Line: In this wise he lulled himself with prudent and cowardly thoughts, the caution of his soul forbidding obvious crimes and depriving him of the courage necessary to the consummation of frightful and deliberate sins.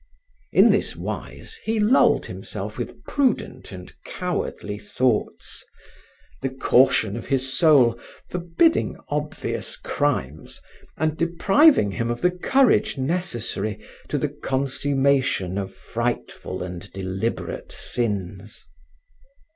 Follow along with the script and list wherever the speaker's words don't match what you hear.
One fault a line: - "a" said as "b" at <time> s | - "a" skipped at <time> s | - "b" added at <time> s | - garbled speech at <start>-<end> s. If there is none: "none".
none